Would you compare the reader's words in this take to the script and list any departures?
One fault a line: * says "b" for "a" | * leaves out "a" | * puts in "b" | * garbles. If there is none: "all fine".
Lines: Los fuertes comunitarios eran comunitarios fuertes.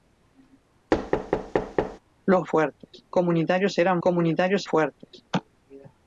all fine